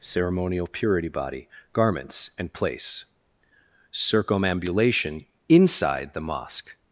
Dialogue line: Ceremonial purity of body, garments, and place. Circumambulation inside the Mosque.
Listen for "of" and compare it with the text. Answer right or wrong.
wrong